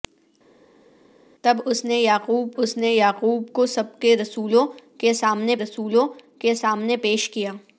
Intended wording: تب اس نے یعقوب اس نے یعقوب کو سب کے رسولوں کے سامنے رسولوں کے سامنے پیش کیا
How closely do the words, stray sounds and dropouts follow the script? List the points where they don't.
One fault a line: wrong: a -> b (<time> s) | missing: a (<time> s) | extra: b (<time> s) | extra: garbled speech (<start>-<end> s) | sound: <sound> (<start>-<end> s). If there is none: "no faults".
no faults